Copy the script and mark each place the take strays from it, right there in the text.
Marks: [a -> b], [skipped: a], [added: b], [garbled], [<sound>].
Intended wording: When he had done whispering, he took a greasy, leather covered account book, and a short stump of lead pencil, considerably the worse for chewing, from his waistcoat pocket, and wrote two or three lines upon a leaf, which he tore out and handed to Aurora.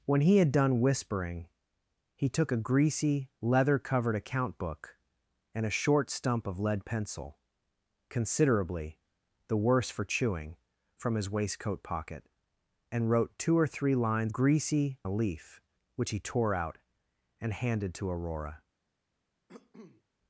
When he had done whispering, he took a greasy, leather covered account book, and a short stump of lead pencil, considerably the worse for chewing, from his waistcoat pocket, and wrote two or three lines [upon -> greasy] a leaf, which he tore out and handed to Aurora. [cough]